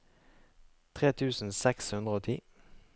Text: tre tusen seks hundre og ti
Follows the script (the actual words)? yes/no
yes